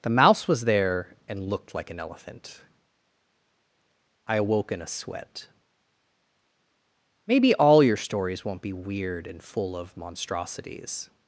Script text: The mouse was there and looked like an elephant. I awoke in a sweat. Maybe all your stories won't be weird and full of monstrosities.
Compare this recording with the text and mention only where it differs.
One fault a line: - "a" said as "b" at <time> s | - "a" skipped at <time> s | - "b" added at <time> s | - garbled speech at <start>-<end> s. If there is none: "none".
none